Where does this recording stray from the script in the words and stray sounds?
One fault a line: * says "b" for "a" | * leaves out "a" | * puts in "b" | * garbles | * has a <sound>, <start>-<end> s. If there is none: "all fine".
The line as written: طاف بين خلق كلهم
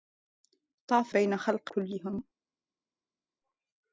all fine